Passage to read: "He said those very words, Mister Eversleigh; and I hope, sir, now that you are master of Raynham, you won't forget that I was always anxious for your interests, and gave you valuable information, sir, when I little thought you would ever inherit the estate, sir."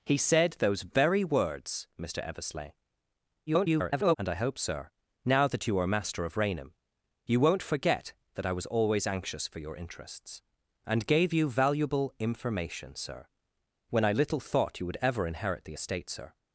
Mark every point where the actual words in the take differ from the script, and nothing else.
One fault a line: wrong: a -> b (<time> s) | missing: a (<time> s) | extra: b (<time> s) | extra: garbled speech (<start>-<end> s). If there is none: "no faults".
extra: garbled speech (3.5-4.2 s)